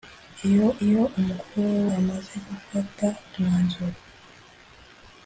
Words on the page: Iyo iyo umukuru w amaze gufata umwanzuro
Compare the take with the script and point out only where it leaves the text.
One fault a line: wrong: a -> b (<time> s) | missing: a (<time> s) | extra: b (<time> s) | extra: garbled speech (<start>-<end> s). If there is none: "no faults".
no faults